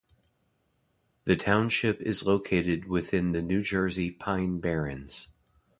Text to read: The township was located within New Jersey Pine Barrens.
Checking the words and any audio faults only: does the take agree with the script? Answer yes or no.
no